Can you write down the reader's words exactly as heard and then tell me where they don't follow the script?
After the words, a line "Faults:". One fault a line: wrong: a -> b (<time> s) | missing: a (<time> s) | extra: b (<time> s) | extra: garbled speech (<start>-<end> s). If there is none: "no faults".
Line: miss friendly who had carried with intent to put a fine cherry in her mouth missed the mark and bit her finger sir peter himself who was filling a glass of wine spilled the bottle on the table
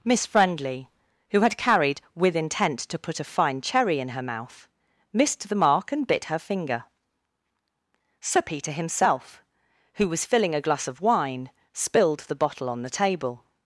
miss friendly who had carried with intent to put a fine cherry in her mouth missed the mark and bit her finger sir peter himself who was filling a glass of wine spilled the bottle on the table
Faults:
no faults